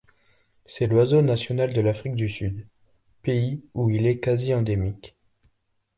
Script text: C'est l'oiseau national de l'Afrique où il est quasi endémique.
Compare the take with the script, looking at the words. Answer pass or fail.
fail